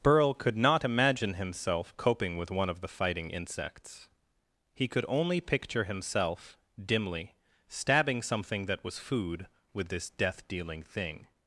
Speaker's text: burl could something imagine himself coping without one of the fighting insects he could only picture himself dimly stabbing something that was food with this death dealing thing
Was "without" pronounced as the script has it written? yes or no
no